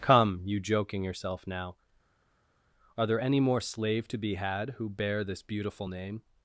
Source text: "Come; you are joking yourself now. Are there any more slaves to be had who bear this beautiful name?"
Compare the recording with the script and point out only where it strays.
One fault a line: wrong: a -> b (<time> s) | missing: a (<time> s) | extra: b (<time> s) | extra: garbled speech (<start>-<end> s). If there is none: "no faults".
missing: are (0.6 s)
wrong: slaves -> slave (3.6 s)